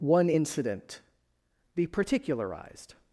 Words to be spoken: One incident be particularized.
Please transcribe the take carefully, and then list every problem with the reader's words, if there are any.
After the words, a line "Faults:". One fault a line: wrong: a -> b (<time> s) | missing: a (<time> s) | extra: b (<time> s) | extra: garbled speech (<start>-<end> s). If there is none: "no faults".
One incident be particularized.
Faults:
no faults